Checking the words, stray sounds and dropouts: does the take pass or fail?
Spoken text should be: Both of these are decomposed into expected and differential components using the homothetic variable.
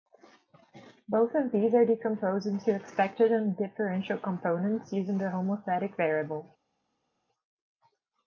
pass